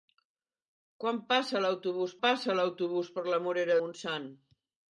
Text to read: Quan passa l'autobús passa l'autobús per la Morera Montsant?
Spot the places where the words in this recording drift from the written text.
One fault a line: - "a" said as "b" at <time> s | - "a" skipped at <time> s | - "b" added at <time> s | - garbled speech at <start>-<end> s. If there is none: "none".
none